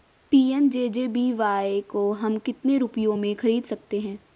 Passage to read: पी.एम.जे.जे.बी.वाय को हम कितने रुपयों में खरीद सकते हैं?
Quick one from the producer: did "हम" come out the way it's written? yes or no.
yes